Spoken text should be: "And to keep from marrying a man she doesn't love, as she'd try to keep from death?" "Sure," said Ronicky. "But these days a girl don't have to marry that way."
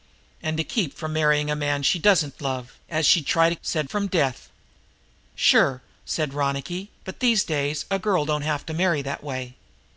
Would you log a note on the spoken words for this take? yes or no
yes